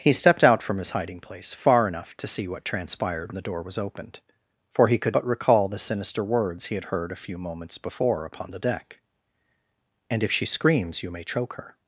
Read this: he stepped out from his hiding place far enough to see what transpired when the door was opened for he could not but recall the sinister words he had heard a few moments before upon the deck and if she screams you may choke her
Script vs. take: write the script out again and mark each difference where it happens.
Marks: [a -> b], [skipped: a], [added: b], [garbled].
he stepped out from his hiding place far enough to see what transpired [skipped: when] the door was opened for he could [skipped: not] but recall the sinister words he had heard a few moments before upon the deck and if she screams you may choke her